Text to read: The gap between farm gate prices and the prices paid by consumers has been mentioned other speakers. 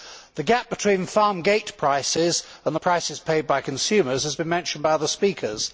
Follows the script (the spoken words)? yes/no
no